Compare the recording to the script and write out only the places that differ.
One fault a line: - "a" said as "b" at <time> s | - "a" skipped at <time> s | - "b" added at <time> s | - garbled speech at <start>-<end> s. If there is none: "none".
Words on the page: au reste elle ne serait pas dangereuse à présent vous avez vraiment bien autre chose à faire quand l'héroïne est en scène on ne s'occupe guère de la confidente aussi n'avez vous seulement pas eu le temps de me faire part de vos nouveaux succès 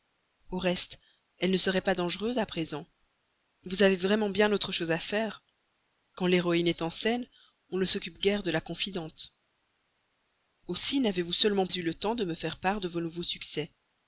- "pas" skipped at 11.7 s